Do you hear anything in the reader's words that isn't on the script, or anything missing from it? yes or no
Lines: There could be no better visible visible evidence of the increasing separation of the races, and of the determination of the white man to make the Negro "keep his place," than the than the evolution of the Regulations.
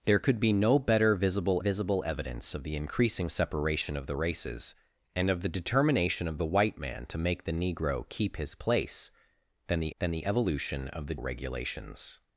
no